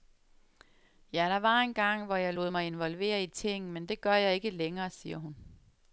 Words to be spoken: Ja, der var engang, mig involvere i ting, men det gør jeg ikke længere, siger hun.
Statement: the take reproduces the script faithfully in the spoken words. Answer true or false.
false